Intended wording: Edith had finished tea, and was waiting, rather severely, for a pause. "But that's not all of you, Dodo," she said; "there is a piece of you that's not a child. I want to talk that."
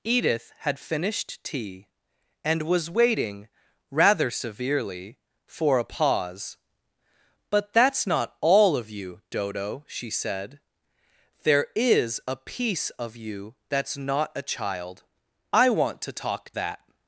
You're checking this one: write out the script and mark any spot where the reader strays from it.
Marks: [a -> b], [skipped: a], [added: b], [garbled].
Edith had finished tea, and was waiting, rather severely, for a pause. "But that's not all of you, Dodo," she said; "there is a piece of you that's not a child. I want to talk that."